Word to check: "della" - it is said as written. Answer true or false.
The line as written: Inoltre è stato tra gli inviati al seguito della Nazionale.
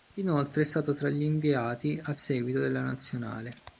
true